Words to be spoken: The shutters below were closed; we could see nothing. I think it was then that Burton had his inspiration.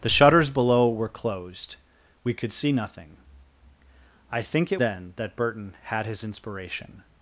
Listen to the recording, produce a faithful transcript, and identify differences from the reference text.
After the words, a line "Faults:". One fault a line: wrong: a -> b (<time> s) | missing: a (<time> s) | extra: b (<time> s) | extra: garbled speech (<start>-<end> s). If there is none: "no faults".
The shutters below were closed; we could see nothing. I think it then that Burton had his inspiration.
Faults:
missing: was (4.8 s)